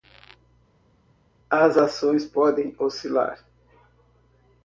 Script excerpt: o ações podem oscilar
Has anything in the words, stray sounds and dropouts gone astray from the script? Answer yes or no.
yes